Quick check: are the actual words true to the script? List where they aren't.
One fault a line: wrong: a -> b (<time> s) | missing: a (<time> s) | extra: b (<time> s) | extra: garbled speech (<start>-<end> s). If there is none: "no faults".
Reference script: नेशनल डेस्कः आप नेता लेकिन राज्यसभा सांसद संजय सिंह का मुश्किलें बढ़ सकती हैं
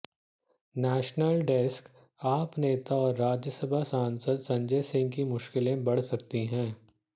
wrong: लेकिन -> और (3.0 s)
wrong: का -> की (5.1 s)